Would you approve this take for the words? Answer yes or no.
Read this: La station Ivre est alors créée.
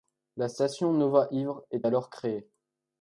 no